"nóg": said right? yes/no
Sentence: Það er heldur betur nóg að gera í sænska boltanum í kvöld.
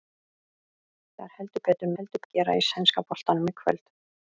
no